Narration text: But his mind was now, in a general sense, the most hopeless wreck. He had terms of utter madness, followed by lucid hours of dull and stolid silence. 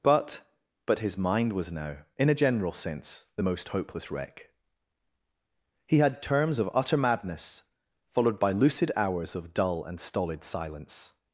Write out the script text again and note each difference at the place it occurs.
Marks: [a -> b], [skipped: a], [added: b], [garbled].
But [added: but] his mind was now, in a general sense, the most hopeless wreck. He had terms of utter madness, followed by lucid hours of dull and stolid silence.